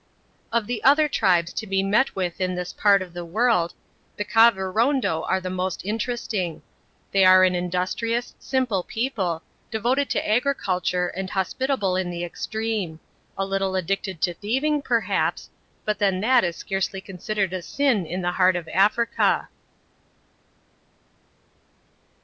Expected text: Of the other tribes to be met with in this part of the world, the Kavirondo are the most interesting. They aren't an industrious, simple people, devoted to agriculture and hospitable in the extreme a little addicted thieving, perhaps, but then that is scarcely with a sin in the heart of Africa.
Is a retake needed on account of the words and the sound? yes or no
yes